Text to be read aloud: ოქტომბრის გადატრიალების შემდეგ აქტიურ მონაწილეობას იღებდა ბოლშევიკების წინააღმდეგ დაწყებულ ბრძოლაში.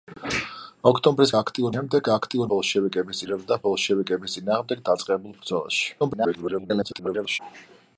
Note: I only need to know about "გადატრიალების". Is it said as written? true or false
false